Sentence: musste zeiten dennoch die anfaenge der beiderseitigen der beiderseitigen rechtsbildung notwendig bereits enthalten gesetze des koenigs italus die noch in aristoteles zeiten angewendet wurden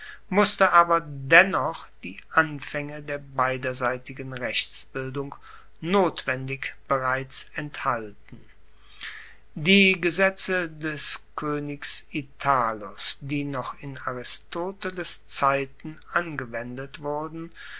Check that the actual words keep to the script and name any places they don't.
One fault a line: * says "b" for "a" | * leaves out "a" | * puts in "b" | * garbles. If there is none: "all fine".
* says "aber" for "zeiten"
* leaves out "der beiderseitigen"
* puts in "die"